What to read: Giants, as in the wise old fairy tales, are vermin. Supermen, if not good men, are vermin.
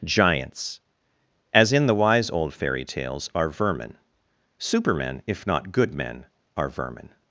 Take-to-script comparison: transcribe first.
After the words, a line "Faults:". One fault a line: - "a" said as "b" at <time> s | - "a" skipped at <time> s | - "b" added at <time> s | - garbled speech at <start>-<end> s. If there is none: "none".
Giants, as in the wise old fairy tales, are vermin. Supermen, if not good men, are vermin.
Faults:
none